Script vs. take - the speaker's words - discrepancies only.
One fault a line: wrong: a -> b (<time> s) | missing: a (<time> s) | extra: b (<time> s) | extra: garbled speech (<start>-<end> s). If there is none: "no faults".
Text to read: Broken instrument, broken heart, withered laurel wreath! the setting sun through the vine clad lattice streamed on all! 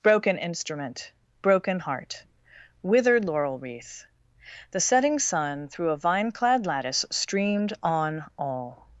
wrong: the -> a (5.9 s)